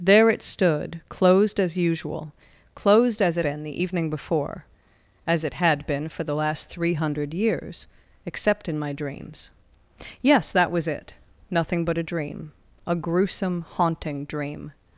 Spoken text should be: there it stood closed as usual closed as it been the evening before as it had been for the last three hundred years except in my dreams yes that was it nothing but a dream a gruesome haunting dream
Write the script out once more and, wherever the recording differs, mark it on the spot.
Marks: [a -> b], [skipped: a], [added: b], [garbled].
there it stood closed as usual closed as it been the evening before as it had been for the last three hundred years except in my dreams yes that was it nothing but a dream a gruesome haunting dream